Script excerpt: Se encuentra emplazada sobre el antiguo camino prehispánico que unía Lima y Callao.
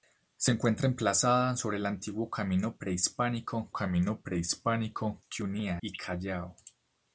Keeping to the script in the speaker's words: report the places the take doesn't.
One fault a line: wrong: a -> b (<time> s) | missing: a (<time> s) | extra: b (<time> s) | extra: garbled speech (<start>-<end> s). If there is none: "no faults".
extra: camino prehispánico (3.7 s)
missing: Lima (5.8 s)